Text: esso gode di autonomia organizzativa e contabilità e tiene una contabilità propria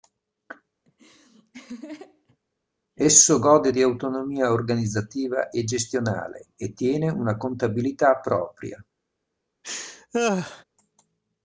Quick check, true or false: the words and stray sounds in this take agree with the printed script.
false